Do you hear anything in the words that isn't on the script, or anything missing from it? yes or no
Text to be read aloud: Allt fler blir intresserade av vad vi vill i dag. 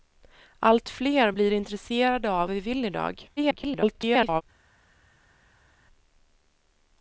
yes